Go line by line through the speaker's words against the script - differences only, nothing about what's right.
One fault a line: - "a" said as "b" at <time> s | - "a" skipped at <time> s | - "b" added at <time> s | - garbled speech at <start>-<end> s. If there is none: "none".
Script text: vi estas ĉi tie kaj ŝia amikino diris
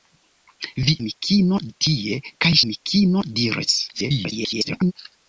- "estas" said as "amikino" at 1.0 s
- "ŝia" skipped at 2.5 s
- garbled speech at 3.9-4.9 s